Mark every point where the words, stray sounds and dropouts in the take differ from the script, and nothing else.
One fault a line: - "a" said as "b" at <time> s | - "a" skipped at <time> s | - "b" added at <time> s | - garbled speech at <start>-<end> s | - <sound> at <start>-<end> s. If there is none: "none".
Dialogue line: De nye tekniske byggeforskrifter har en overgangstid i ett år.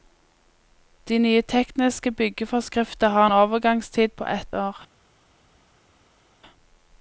- "i" said as "på" at 4.1 s